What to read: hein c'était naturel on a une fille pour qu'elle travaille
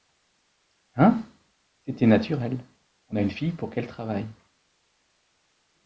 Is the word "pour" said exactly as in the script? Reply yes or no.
yes